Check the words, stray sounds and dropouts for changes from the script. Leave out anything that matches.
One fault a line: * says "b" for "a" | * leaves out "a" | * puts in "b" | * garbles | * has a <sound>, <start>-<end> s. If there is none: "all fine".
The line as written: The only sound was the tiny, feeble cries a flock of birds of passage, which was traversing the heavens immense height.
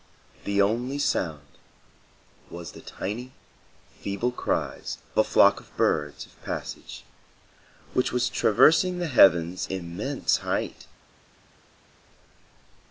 all fine